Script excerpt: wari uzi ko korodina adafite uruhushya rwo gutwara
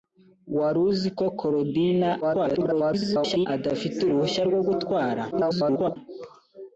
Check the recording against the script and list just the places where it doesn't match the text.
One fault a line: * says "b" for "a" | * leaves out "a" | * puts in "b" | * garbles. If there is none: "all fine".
* garbles
* garbles